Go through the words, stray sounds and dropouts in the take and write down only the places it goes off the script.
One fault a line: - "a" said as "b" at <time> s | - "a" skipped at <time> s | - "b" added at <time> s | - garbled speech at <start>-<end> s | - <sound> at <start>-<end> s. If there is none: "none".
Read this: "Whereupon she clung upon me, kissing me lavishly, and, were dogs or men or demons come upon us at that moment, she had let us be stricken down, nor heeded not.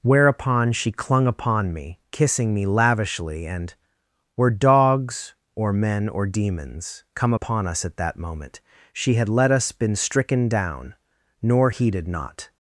- "be" said as "been" at 9.7 s